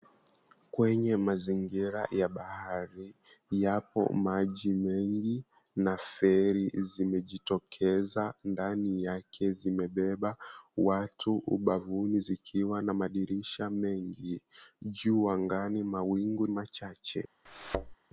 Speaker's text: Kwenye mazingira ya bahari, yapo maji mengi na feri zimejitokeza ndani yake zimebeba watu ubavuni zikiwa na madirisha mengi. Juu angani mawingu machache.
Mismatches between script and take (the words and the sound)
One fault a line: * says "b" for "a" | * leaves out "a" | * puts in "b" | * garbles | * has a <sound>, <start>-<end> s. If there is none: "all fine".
* has a thud, 17.5-17.9 s